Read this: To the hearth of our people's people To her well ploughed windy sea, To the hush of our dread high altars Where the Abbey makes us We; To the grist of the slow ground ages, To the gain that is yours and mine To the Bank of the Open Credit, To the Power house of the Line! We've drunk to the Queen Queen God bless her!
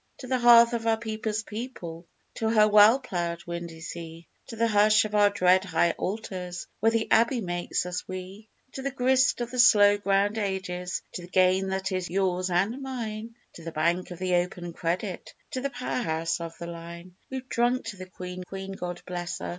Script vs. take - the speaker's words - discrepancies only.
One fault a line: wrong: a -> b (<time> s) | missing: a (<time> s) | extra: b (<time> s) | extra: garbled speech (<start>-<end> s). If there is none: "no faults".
no faults